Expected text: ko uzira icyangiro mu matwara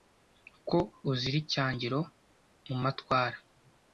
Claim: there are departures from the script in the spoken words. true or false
false